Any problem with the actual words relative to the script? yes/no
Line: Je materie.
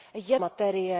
no